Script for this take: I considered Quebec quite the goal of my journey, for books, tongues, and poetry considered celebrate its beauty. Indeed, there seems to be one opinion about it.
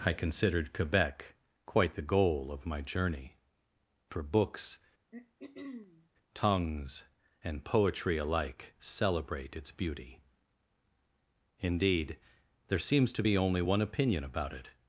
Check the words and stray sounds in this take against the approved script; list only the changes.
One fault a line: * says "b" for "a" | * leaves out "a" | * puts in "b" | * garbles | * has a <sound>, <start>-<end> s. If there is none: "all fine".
* has a throat clearing, 5.1-6.1 s
* says "alike" for "considered"
* puts in "only"